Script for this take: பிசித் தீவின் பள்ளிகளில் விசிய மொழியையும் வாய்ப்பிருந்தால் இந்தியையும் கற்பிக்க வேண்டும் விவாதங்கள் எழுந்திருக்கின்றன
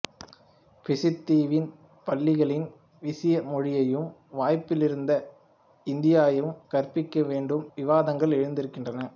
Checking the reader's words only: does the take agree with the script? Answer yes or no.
yes